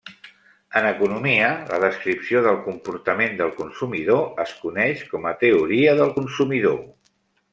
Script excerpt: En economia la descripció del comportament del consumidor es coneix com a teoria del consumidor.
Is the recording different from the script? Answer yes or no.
no